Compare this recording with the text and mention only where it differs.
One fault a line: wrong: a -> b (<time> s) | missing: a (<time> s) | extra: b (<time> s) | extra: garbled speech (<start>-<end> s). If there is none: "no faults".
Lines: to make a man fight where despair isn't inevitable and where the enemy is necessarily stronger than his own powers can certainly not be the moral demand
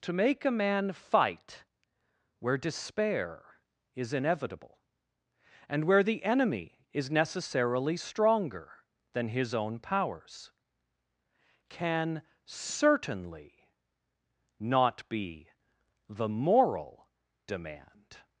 wrong: isn't -> is (3.9 s)